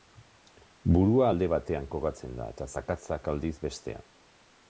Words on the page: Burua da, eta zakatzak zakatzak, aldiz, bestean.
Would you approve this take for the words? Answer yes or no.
no